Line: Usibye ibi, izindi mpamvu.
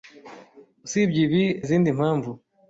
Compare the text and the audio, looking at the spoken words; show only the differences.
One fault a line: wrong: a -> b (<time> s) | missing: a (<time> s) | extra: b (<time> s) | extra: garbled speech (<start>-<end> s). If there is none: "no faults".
no faults